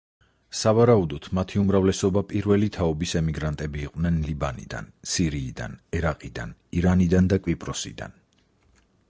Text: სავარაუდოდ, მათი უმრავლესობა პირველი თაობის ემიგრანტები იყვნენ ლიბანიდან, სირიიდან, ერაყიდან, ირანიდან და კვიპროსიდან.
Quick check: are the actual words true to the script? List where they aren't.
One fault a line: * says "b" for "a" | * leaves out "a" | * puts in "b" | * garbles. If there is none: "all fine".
all fine